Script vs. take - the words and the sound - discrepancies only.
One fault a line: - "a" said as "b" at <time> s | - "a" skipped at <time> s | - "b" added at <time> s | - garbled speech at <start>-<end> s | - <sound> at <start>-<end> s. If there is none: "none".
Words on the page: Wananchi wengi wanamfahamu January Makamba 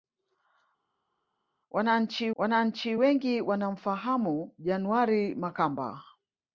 - "wananchi" added at 2.4 s